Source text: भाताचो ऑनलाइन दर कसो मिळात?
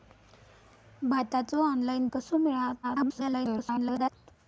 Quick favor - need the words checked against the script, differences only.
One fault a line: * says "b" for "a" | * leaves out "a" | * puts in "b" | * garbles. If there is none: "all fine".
* leaves out "दर"
* garbles